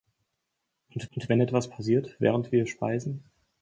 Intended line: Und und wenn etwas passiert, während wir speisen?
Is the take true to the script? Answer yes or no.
yes